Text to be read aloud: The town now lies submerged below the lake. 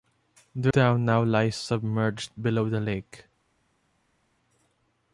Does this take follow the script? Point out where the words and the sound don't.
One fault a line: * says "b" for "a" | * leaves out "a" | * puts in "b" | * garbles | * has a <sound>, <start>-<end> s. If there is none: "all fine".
all fine